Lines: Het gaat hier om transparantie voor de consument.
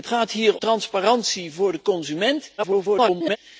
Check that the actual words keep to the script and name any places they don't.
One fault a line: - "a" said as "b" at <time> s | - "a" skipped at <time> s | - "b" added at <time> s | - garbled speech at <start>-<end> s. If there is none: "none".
- "om" skipped at 0.6 s
- garbled speech at 2.6-3.4 s